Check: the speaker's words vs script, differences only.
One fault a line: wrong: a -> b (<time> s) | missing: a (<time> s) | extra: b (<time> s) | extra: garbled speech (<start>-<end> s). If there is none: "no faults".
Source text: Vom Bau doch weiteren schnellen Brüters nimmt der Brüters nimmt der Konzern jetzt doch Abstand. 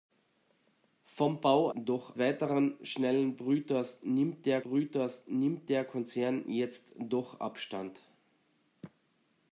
no faults